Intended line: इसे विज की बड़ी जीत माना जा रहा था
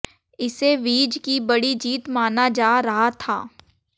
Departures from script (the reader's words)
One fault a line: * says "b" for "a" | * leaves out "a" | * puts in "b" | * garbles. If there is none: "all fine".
all fine